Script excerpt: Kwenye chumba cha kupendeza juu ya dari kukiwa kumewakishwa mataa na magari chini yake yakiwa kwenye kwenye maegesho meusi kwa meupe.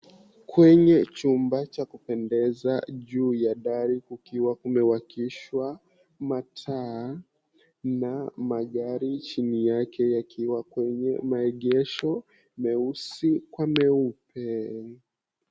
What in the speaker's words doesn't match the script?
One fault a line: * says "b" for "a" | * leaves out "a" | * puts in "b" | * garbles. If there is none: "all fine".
* leaves out "kwenye"